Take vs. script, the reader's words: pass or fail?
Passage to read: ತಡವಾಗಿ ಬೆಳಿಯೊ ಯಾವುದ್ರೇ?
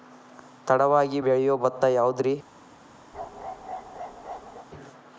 fail